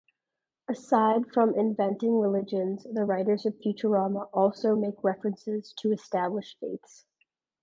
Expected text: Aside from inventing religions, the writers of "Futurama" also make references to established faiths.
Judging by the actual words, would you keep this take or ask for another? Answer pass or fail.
pass